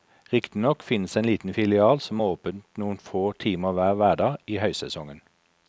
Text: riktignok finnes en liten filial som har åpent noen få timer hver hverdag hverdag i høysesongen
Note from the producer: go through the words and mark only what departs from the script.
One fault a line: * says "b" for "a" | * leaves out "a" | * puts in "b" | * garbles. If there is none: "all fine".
* leaves out "hverdag"